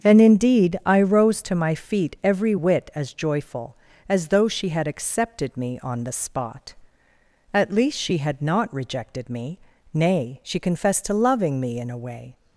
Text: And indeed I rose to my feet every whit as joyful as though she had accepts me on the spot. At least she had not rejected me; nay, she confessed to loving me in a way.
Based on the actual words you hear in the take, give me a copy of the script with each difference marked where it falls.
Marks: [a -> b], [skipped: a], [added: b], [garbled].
And indeed I rose to my feet every whit as joyful as though she had [accepts -> accepted] me on the spot. At least she had not rejected me; nay, she confessed to loving me in a way.